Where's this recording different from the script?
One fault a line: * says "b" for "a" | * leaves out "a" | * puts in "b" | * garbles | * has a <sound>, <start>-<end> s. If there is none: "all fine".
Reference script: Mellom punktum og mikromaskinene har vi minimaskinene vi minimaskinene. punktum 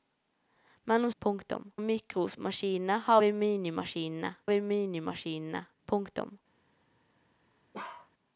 * has a bark, 7.7-8.1 s